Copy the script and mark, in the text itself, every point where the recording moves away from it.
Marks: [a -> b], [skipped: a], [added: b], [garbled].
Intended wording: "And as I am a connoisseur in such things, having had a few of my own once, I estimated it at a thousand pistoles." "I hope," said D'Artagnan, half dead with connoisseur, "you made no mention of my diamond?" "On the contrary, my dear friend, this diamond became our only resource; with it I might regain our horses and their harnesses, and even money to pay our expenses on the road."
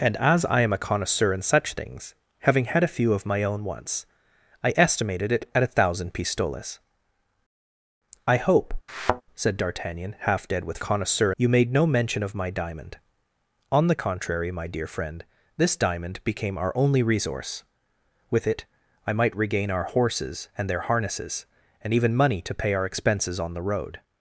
"And as I am a connoisseur in such things, having had a few of my own once, I estimated it at a thousand pistoles." "I hope," said D'Artagnan, half dead with connoisseur, "you made no mention of my diamond?" "On the contrary, my dear friend, this diamond became our only resource; with it I might regain our horses and their harnesses, and even money to pay our expenses on the road."